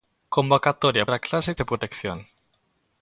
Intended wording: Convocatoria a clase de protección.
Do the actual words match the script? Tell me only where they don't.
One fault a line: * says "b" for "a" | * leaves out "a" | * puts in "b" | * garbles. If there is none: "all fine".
all fine